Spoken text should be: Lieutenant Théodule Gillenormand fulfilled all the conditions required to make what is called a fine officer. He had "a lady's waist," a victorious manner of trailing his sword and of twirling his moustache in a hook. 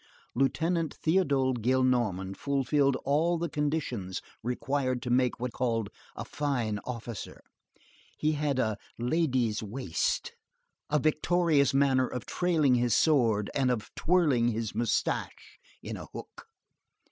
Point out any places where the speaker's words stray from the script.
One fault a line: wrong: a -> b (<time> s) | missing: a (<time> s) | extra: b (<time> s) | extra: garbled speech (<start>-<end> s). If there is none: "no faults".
missing: is (5.5 s)